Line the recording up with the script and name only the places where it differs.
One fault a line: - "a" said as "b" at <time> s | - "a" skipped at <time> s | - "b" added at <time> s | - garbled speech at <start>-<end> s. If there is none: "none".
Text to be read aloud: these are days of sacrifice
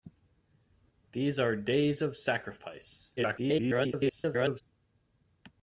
- garbled speech at 3.2-4.6 s